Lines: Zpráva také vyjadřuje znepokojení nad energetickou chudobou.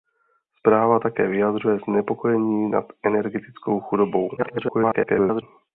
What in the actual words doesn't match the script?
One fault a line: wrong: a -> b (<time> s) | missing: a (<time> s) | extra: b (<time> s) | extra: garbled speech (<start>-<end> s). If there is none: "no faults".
extra: garbled speech (4.4-5.4 s)